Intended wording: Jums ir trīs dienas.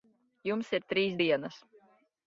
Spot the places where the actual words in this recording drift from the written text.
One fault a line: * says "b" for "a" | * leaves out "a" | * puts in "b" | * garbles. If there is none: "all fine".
all fine